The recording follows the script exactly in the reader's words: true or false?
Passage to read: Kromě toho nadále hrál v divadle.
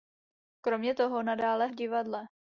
false